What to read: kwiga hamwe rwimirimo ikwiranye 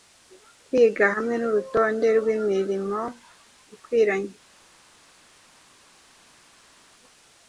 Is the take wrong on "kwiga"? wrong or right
right